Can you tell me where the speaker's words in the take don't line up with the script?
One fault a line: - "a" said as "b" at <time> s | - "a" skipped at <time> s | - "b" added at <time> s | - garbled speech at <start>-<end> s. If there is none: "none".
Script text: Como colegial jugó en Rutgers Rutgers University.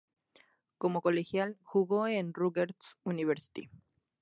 - "Rutgers" skipped at 3.0 s